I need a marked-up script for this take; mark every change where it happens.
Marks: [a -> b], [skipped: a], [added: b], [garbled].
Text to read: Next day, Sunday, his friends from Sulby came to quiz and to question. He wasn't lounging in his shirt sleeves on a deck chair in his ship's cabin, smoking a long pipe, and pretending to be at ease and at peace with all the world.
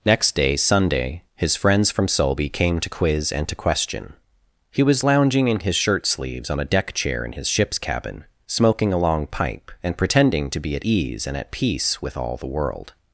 Next day, Sunday, his friends from Sulby came to quiz and to question. He [wasn't -> was] lounging in his shirt sleeves on a deck chair in his ship's cabin, smoking a long pipe, and pretending to be at ease and at peace with all the world.